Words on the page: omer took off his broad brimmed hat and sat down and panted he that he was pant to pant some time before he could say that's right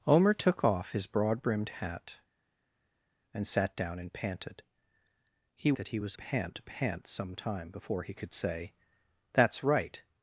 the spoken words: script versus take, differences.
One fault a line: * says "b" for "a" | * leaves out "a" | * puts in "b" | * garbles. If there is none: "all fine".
all fine